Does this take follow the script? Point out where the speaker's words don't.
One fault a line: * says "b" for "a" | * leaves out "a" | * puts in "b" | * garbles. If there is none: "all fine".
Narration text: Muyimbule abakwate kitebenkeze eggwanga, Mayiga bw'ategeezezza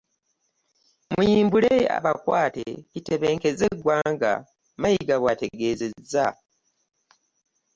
all fine